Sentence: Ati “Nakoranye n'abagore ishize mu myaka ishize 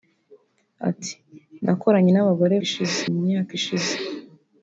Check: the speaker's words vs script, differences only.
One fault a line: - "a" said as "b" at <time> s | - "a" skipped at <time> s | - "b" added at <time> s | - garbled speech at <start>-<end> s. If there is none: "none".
none